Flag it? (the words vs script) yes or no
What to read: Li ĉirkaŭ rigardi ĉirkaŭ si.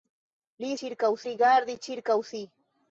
no